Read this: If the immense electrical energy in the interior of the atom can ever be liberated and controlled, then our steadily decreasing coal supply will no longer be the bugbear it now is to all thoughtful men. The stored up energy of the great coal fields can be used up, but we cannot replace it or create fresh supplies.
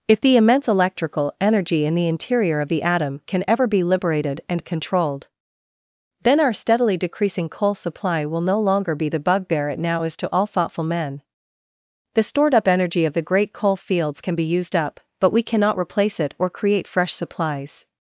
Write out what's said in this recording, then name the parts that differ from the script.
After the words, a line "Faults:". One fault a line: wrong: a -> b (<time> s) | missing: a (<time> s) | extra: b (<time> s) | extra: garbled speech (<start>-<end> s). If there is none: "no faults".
If the immense electrical energy in the interior of the atom can ever be liberated and controlled, then our steadily decreasing coal supply will no longer be the bugbear it now is to all thoughtful men. The stored up energy of the great coal fields can be used up, but we cannot replace it or create fresh supplies.
Faults:
no faults